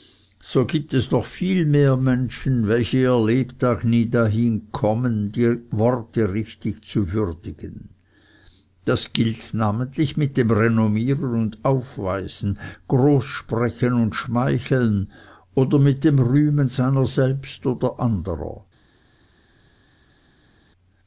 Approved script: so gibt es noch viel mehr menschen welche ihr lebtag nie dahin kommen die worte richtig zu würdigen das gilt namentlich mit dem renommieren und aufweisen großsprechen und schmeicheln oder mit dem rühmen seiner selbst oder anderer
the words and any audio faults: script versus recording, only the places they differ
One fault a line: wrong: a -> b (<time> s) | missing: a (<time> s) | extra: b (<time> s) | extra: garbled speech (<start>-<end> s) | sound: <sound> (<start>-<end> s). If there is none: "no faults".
no faults